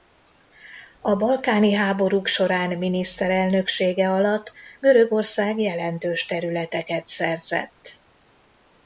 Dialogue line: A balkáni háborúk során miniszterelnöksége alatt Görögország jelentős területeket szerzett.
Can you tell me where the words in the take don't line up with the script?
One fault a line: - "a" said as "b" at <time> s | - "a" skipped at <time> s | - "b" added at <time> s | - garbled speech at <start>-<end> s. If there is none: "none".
none